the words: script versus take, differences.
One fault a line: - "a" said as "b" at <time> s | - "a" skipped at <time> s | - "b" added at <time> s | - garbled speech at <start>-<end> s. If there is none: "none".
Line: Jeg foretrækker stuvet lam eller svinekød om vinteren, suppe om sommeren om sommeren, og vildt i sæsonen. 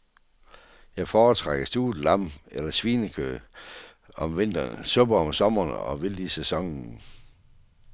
- "om sommeren" skipped at 5.7 s